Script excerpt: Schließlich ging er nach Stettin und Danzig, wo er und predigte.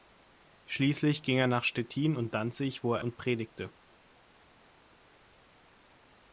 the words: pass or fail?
pass